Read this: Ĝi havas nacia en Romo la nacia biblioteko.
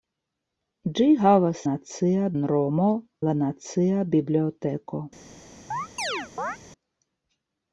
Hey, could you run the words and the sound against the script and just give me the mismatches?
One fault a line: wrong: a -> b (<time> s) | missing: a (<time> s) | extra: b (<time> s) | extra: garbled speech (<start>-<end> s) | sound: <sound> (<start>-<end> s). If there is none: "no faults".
sound: chirp (5.7-6.6 s)